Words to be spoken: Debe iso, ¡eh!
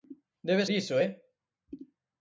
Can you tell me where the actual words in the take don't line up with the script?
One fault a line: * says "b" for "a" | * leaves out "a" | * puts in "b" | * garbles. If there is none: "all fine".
all fine